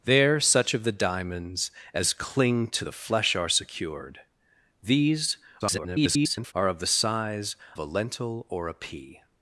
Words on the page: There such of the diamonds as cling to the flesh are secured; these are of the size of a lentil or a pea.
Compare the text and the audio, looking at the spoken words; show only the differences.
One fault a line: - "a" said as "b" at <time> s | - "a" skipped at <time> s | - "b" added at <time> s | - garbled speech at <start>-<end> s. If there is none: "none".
- garbled speech at 5.6-6.5 s
- "of" skipped at 7.6 s